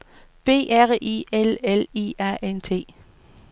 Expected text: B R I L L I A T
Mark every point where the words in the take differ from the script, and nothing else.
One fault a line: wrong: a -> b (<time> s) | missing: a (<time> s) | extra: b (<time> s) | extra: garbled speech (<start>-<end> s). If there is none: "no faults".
extra: N (2.4 s)